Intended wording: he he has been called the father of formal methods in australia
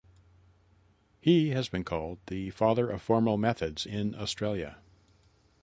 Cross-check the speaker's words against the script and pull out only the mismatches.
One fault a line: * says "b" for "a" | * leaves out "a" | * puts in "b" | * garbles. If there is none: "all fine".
* leaves out "he"